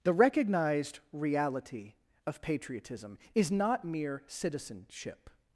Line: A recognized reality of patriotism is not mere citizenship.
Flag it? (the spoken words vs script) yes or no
yes